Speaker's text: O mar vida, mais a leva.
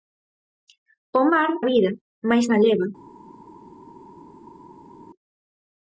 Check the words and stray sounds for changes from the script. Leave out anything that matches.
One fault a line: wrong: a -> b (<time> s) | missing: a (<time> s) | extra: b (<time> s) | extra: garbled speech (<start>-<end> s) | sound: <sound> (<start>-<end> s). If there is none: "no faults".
no faults